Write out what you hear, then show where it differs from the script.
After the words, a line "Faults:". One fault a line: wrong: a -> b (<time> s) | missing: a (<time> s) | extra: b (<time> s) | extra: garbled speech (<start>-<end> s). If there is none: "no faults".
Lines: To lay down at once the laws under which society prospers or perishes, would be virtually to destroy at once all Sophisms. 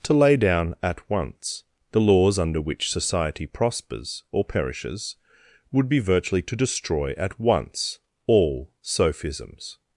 To lay down at once the laws under which society prospers or perishes, would be virtually to destroy at once all Sophisms.
Faults:
no faults